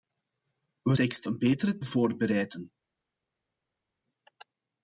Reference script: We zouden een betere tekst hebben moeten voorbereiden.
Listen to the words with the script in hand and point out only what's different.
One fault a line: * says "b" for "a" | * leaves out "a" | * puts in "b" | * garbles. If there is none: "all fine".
* says "tekst" for "zouden"
* leaves out "tekst hebben moeten"